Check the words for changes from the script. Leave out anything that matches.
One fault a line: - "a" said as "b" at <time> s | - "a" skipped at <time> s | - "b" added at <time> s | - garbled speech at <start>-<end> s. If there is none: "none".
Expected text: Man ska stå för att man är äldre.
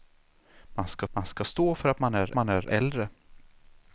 - "man ska" added at 1.1 s
- "man är" added at 2.3 s